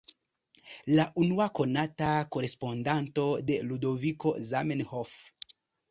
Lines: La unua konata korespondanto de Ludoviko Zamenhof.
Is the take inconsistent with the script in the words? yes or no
no